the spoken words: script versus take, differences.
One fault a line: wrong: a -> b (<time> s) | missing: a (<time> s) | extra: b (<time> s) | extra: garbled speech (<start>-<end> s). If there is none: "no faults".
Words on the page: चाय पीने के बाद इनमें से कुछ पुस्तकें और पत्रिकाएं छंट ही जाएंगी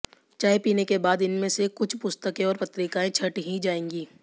no faults